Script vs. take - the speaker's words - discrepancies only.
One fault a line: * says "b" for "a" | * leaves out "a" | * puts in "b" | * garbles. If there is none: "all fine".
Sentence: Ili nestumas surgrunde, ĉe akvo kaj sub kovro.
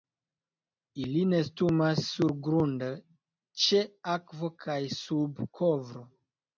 all fine